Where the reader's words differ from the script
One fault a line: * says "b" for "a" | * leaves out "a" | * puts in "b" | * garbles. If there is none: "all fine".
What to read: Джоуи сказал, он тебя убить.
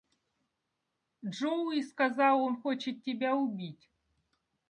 * puts in "хочет"